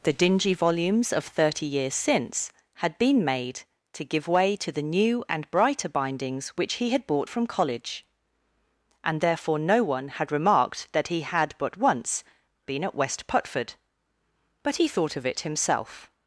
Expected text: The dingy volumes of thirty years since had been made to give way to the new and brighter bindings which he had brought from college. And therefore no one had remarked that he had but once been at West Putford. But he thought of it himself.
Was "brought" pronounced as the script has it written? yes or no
no